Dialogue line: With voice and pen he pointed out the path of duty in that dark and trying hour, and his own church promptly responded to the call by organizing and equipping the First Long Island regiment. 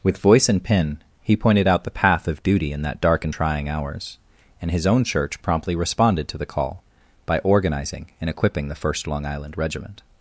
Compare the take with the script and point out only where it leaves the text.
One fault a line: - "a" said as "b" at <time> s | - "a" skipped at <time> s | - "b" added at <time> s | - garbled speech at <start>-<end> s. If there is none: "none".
- "hour" said as "hours" at 3.7 s